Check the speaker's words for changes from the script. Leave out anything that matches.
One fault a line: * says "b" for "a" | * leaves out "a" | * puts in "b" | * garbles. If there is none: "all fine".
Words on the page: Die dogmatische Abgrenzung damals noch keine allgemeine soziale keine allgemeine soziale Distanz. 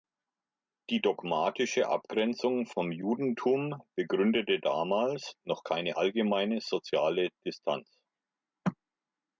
* says "vom Judentum begründete damals noch" for "damals noch keine allgemeine soziale"